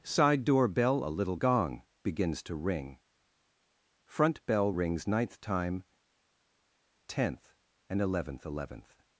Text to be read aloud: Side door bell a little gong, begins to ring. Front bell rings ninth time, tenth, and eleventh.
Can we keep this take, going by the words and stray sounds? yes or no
no